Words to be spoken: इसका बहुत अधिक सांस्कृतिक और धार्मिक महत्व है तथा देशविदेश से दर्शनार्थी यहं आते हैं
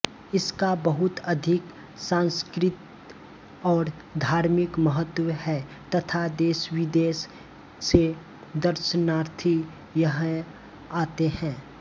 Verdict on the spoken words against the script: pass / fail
pass